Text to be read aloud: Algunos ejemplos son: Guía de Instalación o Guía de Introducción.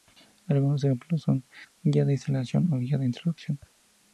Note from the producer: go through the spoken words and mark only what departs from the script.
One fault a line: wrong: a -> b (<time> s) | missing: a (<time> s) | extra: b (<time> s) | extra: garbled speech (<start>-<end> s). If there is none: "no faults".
no faults